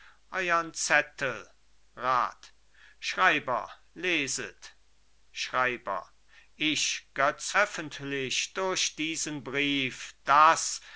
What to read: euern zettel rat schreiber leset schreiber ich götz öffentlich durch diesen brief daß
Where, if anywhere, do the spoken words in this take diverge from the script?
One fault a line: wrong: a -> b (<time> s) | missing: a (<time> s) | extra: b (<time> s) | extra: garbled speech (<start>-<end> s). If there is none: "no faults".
no faults